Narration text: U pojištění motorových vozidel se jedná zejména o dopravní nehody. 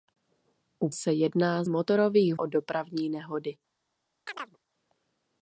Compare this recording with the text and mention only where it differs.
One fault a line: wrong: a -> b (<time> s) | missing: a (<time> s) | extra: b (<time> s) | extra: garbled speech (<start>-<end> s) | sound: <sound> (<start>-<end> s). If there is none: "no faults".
missing: pojištění motorových vozidel (0.9 s)
wrong: zejména -> motorových (1.7 s)
sound: chirp (4.3-4.6 s)